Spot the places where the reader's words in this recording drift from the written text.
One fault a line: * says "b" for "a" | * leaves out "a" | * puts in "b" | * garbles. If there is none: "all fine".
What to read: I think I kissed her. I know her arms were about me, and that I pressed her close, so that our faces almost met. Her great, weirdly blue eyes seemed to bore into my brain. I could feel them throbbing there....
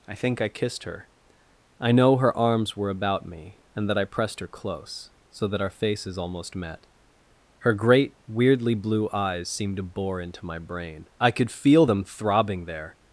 all fine